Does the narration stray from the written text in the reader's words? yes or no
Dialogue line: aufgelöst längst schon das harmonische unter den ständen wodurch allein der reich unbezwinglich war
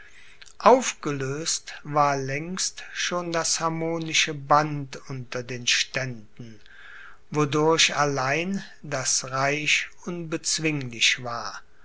yes